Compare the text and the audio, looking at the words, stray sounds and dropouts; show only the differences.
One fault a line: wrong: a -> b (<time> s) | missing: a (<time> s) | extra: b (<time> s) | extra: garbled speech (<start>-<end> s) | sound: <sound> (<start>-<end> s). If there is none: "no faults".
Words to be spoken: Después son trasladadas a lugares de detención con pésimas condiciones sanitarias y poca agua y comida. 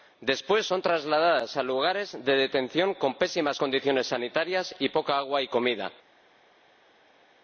no faults